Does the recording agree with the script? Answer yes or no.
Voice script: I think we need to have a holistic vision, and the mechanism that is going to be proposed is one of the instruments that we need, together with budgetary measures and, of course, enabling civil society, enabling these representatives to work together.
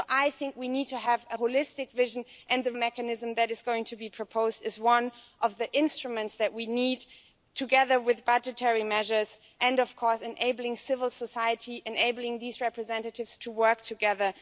yes